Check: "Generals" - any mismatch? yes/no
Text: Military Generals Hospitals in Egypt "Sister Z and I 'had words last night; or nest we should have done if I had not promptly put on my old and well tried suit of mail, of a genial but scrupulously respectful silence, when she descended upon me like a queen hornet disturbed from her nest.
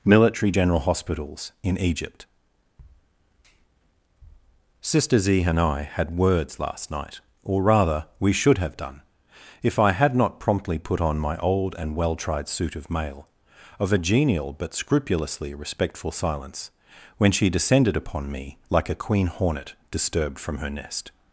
yes